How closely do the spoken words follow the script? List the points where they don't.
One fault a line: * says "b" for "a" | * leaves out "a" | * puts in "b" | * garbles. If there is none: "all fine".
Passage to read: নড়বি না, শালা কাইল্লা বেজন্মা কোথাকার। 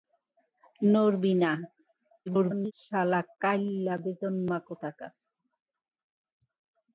* garbles